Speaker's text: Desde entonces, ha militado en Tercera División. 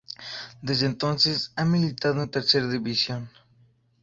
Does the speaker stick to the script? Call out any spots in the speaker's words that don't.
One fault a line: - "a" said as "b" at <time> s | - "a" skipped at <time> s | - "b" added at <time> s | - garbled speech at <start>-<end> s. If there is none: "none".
none